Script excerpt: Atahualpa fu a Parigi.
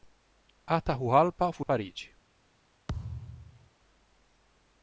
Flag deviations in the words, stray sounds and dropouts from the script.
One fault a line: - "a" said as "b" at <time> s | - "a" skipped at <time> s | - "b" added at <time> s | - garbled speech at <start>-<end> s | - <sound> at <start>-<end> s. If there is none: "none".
- thud at 2.9-3.7 s